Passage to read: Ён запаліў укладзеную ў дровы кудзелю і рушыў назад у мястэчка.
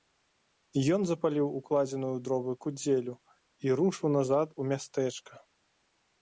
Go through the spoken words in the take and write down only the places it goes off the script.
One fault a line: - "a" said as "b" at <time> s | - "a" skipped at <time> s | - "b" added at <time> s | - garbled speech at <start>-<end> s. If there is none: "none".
none